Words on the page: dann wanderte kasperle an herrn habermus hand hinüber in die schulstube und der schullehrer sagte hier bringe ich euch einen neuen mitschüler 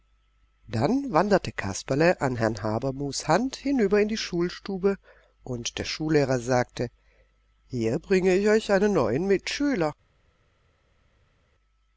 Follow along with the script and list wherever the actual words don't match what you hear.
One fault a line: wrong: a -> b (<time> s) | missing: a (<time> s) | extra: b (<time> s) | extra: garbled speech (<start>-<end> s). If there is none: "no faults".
no faults